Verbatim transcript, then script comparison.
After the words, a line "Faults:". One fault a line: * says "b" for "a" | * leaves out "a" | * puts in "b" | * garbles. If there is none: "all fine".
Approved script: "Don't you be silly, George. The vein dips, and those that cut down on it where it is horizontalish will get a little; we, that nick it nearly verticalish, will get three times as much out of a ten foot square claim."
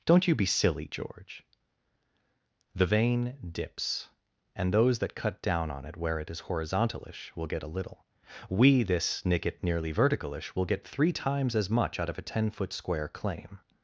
"Don't you be silly, George. The vein dips, and those that cut down on it where it is horizontalish will get a little; we, this nick it nearly verticalish, will get three times as much out of a ten foot square claim."
Faults:
* says "this" for "that"